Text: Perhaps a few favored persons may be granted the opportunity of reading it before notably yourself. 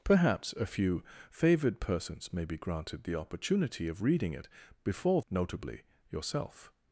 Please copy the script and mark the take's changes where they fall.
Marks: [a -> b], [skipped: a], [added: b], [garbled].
Perhaps a few favored persons may be granted the opportunity of reading it before notably yourself.